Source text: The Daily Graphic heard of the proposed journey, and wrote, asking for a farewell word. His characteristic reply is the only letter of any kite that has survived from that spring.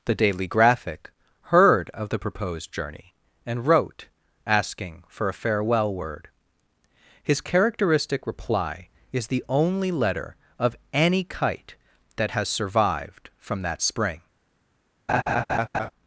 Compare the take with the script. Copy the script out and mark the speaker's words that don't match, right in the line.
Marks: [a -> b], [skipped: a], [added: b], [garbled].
The Daily Graphic heard of the proposed journey, and wrote, asking for a farewell word. His characteristic reply is the only letter of any kite that has survived from that spring.